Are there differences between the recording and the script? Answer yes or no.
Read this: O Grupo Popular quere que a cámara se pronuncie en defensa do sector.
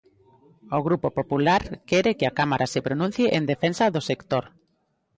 no